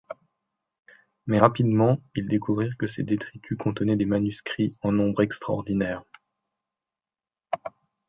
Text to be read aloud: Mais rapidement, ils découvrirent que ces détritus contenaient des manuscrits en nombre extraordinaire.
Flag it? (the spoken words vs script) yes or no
no